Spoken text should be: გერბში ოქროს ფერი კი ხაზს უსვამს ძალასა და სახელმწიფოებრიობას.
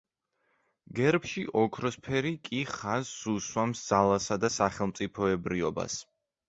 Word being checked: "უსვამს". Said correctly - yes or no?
yes